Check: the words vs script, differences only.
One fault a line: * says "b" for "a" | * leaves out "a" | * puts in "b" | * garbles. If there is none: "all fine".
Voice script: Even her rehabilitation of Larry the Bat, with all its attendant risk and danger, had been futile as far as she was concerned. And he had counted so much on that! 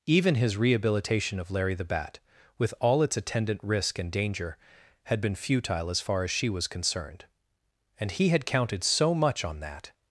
* says "his" for "her"